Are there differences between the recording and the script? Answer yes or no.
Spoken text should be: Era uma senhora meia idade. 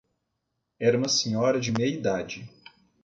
yes